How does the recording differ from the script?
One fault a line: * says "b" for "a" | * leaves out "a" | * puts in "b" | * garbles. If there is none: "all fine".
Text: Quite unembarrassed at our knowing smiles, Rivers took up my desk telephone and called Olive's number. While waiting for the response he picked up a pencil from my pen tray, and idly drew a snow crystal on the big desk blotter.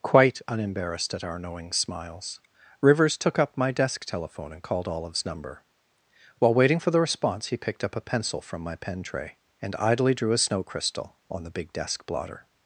all fine